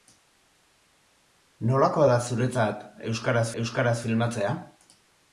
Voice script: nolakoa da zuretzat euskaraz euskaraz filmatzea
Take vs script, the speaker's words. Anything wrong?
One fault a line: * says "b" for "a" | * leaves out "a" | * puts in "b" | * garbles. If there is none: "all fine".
all fine